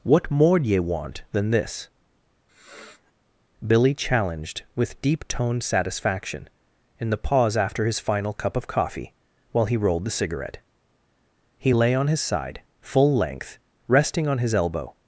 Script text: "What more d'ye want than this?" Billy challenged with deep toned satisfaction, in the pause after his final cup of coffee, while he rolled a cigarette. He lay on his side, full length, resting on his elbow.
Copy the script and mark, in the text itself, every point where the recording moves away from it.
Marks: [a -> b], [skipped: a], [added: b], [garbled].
"What more d'ye want than this?" Billy challenged with deep toned satisfaction, in the pause after his final cup of coffee, while he rolled [a -> the] cigarette. He lay on his side, full length, resting on his elbow.